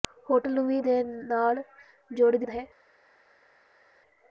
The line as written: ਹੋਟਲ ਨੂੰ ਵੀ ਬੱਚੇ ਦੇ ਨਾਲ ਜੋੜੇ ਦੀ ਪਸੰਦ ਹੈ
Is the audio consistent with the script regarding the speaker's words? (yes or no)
no